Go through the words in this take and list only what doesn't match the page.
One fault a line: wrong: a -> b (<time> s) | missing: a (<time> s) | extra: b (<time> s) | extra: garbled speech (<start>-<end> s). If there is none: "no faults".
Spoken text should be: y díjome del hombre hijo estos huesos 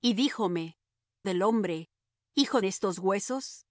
no faults